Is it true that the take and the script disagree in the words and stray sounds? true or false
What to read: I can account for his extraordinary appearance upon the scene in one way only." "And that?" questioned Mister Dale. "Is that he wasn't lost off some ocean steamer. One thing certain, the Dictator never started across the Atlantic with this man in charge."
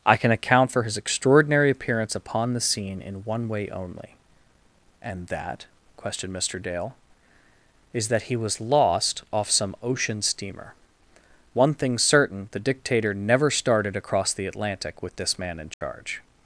true